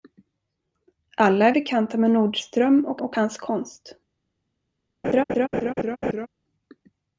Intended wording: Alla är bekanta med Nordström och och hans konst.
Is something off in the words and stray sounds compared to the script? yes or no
yes